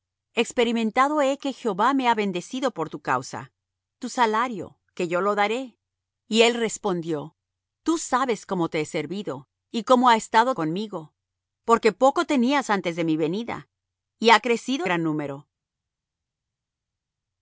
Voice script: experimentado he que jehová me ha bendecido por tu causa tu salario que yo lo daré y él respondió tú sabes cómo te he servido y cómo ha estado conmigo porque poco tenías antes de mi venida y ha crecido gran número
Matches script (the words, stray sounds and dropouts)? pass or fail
pass